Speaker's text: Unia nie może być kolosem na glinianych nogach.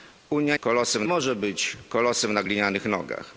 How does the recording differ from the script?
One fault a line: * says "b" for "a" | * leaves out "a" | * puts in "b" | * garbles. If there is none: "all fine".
* says "kolosem" for "nie"